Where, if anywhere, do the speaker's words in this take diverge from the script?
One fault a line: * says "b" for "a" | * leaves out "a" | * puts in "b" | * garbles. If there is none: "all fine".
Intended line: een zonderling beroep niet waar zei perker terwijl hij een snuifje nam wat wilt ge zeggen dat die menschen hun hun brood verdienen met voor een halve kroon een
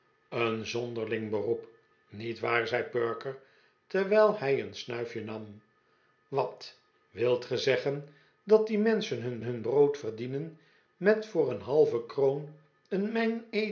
all fine